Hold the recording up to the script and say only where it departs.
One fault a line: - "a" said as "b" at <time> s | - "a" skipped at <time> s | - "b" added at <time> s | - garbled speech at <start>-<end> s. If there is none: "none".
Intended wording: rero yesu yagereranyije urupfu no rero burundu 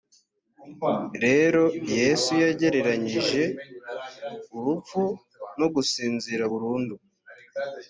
- "rero" said as "gusinzira" at 5.8 s